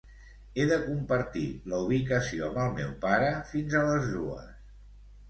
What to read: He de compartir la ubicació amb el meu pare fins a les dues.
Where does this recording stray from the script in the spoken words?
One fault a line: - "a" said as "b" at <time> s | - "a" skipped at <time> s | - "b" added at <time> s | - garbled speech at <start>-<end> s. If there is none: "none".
none